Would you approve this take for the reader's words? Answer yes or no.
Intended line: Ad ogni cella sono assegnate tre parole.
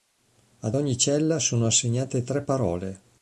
yes